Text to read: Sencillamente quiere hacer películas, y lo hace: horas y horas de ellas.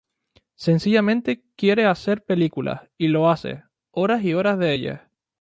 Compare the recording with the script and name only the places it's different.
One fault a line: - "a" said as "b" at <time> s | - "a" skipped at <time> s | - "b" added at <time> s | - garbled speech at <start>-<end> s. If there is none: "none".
none